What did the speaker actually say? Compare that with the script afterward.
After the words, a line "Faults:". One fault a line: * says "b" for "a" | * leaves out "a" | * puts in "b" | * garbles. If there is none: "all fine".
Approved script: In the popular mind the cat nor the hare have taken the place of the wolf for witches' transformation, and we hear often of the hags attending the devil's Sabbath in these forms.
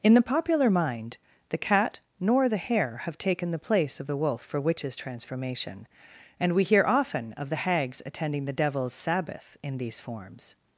In the popular mind the cat nor the hare have taken the place of the wolf for witches' transformation, and we hear often of the hags attending the devil's Sabbath in these forms.
Faults:
all fine